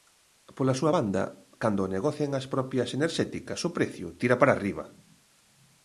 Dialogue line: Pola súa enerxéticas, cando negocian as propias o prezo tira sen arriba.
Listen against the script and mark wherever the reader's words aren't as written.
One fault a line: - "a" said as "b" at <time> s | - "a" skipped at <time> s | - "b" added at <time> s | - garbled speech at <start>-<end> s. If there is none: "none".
- "enerxéticas" said as "banda" at 1.0 s
- "enerxéticas" added at 3.0 s
- "sen" said as "para" at 4.4 s